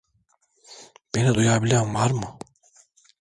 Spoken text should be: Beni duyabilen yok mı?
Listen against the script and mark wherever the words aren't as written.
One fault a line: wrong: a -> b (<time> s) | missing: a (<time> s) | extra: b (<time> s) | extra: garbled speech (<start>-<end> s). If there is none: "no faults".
wrong: yok -> var (1.9 s)